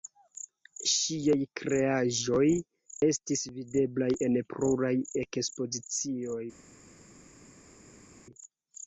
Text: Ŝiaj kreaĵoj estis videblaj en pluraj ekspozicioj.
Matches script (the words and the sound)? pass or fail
pass